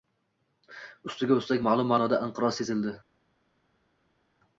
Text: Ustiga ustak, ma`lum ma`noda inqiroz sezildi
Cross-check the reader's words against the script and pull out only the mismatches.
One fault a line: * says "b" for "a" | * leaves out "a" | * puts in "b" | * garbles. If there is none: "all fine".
all fine